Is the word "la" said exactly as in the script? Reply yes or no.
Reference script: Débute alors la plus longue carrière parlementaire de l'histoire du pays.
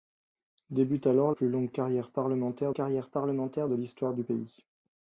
no